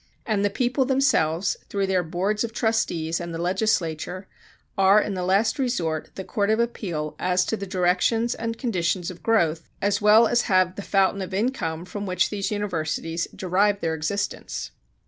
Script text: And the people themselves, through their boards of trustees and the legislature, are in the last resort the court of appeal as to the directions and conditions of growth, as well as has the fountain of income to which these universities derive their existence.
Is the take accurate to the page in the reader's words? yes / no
no